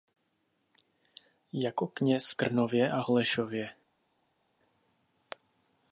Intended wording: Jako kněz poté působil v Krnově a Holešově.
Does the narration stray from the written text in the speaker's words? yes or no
yes